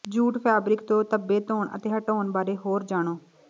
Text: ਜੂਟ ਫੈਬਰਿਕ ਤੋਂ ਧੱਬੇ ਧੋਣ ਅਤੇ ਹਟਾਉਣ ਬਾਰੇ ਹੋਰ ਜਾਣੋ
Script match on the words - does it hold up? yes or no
yes